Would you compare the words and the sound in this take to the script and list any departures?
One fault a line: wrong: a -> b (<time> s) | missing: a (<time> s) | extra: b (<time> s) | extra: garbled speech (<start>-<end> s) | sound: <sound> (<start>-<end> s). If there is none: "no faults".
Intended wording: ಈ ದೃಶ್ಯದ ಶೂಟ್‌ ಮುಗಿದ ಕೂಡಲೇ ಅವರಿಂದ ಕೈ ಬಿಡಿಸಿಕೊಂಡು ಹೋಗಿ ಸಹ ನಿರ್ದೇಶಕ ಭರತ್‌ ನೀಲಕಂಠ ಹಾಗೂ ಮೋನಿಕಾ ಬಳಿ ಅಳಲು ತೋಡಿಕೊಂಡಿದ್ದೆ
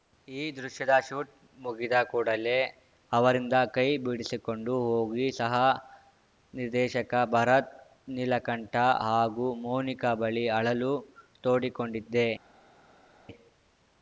no faults